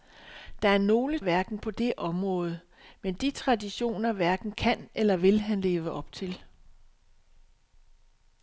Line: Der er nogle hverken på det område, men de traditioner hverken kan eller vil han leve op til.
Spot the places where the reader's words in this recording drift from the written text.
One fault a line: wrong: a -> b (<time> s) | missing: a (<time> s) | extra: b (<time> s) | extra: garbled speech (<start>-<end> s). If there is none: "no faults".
no faults